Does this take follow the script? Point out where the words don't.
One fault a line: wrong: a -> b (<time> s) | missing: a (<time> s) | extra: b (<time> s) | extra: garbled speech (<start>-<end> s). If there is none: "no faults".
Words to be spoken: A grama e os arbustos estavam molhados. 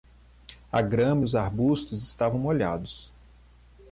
no faults